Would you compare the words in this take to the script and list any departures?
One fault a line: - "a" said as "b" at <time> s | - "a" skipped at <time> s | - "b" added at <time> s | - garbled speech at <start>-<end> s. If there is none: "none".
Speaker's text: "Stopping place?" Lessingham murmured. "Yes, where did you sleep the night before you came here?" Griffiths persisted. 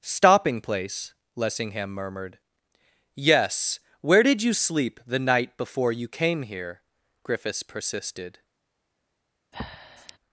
none